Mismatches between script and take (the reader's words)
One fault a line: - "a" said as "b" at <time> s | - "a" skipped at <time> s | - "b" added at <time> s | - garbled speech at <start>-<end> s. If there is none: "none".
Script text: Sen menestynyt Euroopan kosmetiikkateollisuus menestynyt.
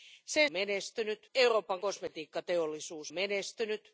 none